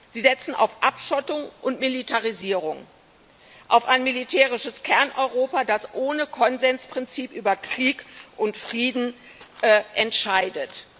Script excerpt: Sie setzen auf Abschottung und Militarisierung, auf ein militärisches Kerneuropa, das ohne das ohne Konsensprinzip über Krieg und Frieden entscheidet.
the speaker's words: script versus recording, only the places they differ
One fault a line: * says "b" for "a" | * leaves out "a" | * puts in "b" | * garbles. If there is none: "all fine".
* leaves out "das ohne"